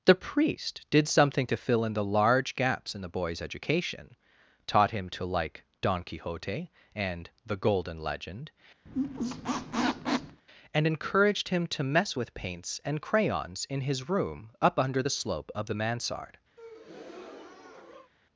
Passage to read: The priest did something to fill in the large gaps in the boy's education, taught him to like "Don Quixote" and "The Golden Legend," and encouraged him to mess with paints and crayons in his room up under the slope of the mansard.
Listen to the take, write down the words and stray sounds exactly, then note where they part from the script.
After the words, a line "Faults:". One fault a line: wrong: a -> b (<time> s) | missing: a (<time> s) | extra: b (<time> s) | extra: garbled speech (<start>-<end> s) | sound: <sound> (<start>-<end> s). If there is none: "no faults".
The priest did something to fill in the large gaps in the boy's education, taught him to like "Don Quixote" and "The Golden Legend," and encouraged him to mess with paints and crayons in his room up under the slope of the mansard.
Faults:
sound: squeak (8.9-10.4 s)
sound: breath (16.6-18.1 s)